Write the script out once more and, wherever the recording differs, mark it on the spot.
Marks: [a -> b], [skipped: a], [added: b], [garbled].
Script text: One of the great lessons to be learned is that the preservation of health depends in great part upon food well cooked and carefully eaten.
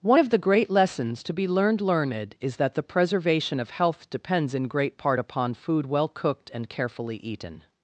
One of the great lessons to be learned [added: learned] is that the preservation of health depends in great part upon food well cooked and carefully eaten.